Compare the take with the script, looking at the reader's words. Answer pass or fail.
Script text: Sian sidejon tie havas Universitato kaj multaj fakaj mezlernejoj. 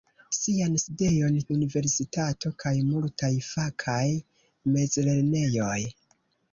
fail